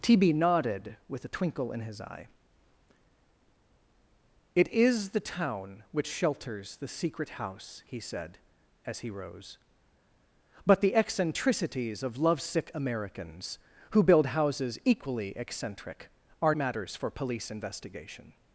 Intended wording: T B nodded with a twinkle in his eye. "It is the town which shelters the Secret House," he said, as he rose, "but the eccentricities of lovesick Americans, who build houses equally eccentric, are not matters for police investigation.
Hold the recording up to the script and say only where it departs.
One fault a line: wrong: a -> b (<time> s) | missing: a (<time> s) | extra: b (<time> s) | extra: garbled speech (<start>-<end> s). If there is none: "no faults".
missing: not (16.6 s)